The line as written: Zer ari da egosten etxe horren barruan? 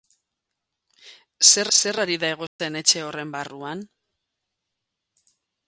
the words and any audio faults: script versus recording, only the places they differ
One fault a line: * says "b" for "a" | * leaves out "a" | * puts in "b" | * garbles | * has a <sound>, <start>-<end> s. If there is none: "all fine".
* puts in "zer"
* has a dropout, 2.5-2.6 s